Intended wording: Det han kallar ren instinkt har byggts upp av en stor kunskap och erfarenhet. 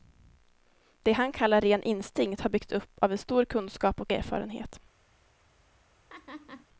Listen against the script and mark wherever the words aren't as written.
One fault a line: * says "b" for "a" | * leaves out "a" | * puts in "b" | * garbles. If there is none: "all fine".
all fine